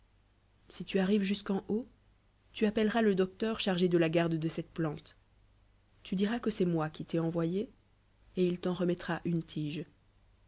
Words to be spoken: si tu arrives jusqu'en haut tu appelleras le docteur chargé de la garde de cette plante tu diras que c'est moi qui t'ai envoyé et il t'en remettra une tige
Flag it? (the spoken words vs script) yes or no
no